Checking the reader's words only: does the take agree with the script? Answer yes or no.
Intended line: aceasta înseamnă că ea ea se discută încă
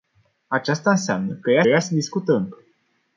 yes